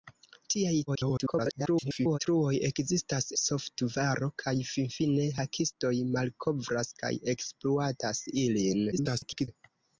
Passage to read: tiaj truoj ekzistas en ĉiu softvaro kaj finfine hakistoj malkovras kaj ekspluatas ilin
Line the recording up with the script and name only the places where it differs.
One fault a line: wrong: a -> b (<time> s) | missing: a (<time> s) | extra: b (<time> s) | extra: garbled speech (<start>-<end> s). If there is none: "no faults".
extra: garbled speech (0.9-2.2 s)
missing: en ĉiu (3.3 s)
extra: garbled speech (8.9-9.5 s)